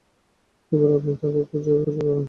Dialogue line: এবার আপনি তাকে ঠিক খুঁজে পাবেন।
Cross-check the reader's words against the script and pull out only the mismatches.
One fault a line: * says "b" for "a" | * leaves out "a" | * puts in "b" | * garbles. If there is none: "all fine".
* leaves out "ঠিক"